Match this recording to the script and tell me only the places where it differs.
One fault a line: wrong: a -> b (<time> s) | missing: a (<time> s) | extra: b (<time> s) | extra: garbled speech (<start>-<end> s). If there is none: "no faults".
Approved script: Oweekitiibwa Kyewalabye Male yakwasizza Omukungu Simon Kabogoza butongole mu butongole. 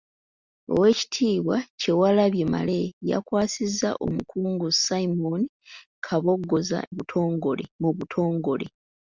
no faults